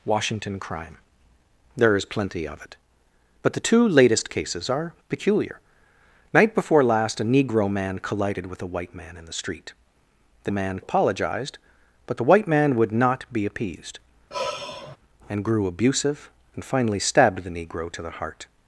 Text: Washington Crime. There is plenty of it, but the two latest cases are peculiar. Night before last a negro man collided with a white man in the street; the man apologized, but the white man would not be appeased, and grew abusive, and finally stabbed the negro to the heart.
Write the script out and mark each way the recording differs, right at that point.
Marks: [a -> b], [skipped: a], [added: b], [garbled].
Washington Crime. There is plenty of it, but the two latest cases are peculiar. Night before last a negro man collided with a white man in the street; the man apologized, but the white man would not be appeased, and grew abusive, and finally stabbed the negro to the heart.